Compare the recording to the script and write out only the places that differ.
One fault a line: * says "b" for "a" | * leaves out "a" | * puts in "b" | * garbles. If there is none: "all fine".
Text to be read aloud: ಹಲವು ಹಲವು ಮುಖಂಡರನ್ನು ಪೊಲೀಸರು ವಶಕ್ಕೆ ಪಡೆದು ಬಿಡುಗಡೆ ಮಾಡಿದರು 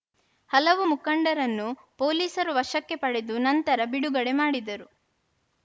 * leaves out "ಹಲವು"
* puts in "ನಂತರ"